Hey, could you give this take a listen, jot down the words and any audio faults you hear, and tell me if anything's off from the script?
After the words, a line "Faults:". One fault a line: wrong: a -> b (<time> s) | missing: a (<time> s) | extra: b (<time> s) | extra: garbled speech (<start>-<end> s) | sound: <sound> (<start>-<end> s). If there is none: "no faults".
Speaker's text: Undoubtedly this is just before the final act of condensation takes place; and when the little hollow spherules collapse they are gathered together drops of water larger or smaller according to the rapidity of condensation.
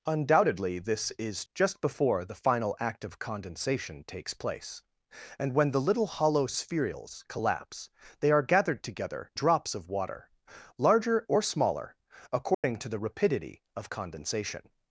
Undoubtedly this is just before the final act of condensation takes place; and when the little hollow spherules collapse they are gathered together drops of water larger or smaller according to the rapidity of condensation.
Faults:
sound: dropout (12.5-12.6 s)